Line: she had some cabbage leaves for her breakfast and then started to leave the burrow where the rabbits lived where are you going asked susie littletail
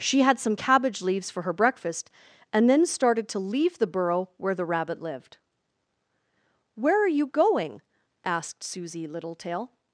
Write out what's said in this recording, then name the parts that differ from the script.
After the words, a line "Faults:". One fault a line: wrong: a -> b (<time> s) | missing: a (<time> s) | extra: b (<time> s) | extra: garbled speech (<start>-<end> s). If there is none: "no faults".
she had some cabbage leaves for her breakfast and then started to leave the burrow where the rabbit lived where are you going asked susie littletail
Faults:
wrong: rabbits -> rabbit (4.7 s)